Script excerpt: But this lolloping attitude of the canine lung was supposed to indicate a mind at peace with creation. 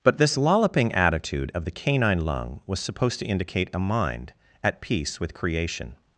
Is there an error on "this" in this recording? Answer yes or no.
no